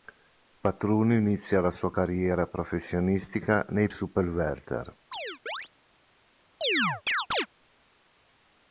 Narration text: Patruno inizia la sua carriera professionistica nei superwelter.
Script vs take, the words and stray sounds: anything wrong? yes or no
yes